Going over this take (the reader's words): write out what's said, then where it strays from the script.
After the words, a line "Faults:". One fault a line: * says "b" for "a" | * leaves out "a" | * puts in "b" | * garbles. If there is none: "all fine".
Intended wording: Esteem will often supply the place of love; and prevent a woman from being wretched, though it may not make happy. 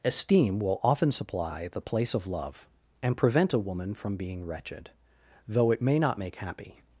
Esteem will often supply the place of love; and prevent a woman from being wretched, though it may not make happy.
Faults:
all fine